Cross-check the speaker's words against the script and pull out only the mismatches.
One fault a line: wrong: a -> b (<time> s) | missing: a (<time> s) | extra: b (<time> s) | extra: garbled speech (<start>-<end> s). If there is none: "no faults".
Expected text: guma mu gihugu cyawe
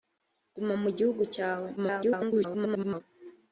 extra: garbled speech (1.8-3.0 s)